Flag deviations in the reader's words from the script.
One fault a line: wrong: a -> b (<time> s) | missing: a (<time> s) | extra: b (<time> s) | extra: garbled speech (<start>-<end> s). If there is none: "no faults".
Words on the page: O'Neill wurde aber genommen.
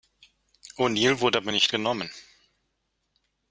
extra: nicht (1.5 s)